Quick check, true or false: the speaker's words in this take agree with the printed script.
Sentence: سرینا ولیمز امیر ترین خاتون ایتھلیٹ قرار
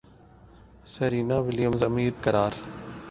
false